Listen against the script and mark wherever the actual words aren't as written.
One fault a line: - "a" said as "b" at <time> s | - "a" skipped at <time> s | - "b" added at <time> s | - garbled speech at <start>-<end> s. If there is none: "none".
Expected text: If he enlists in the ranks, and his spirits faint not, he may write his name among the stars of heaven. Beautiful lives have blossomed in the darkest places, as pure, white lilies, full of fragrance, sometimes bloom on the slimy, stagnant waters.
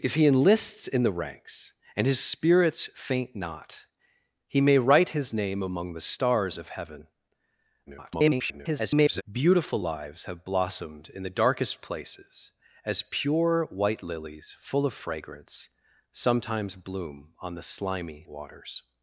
- garbled speech at 7.9-9.2 s
- "stagnant" skipped at 18.2 s